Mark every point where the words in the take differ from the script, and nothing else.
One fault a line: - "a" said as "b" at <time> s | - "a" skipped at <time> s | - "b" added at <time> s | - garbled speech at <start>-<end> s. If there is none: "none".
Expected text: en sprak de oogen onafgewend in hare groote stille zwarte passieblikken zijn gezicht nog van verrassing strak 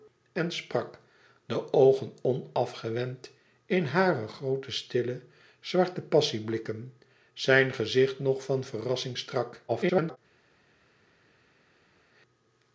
- garbled speech at 9.7-10.2 s